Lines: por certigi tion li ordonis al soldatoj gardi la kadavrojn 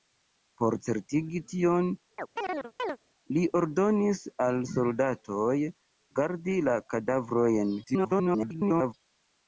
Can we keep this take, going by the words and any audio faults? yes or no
no